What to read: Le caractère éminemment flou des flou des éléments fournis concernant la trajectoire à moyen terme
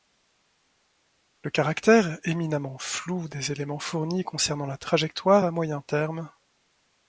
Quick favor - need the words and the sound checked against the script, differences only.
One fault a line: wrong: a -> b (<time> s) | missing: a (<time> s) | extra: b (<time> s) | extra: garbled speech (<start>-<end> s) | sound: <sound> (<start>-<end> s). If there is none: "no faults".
missing: flou des (3.5 s)